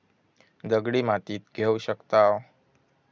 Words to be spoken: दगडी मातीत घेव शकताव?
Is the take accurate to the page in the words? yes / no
yes